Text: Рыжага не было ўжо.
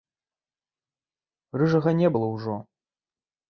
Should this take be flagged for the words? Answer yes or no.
no